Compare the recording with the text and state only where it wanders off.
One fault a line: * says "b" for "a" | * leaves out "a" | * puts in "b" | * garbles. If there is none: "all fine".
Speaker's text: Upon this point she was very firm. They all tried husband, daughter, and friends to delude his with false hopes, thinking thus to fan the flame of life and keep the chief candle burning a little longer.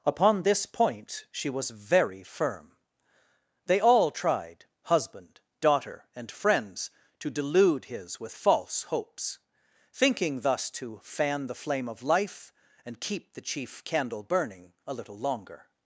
all fine